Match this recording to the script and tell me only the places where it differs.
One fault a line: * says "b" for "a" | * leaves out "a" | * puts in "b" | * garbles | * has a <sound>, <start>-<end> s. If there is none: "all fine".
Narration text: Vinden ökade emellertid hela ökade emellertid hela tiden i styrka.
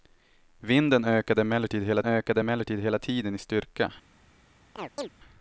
* has a chirp, 4.8-5.1 s